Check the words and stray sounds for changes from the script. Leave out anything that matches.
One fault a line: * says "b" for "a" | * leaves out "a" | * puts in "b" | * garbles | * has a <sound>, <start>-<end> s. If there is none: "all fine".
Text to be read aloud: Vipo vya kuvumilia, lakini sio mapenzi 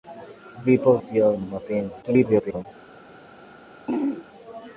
* leaves out "vya kuvumilia lakini"
* garbles
* has a throat clearing, 3.9-4.2 s